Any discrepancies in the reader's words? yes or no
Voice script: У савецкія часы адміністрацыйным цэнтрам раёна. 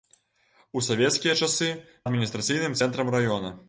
no